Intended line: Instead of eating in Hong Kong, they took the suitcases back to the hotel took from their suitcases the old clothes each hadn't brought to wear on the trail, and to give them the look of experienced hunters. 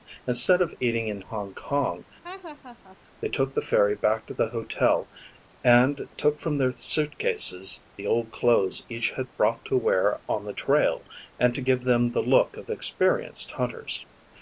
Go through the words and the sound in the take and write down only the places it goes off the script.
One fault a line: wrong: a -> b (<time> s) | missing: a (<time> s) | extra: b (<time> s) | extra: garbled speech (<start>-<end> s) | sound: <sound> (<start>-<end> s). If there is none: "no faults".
sound: laugh (2.2-3.0 s)
wrong: suitcases -> ferry (3.6 s)
extra: and (5.6 s)
wrong: hadn't -> had (9.1 s)